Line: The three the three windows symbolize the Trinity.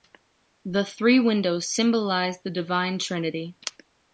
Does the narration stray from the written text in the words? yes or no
yes